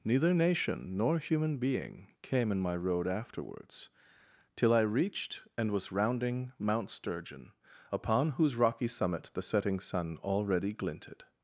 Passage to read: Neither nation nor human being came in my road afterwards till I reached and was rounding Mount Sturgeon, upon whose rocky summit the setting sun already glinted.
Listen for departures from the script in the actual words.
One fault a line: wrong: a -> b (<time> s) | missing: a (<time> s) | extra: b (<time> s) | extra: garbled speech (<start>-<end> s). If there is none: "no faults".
no faults